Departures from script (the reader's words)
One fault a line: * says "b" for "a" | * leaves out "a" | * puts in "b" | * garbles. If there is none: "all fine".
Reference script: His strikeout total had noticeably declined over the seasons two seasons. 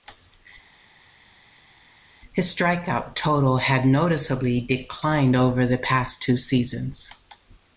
* says "past" for "seasons"